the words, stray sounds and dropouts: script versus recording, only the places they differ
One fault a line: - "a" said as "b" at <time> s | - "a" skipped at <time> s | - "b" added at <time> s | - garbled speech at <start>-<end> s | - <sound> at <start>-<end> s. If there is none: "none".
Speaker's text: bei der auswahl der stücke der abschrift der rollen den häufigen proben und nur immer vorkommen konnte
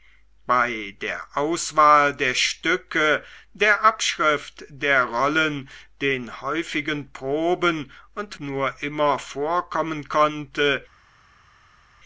none